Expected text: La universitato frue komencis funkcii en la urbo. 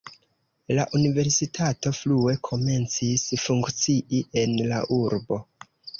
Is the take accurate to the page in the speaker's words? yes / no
yes